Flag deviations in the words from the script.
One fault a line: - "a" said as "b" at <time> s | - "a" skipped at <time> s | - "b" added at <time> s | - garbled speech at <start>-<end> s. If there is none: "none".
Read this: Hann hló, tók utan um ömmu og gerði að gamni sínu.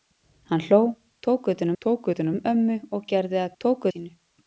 - "tók utan" added at 1.8 s
- "gamni" said as "tók" at 3.6 s